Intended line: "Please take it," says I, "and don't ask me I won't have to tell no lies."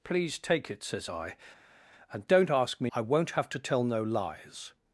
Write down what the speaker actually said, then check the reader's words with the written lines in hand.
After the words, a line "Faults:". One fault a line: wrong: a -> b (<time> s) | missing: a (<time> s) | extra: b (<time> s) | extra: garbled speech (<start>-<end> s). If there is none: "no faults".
"Please take it," says I, "and don't ask me I won't have to tell no lies."
Faults:
no faults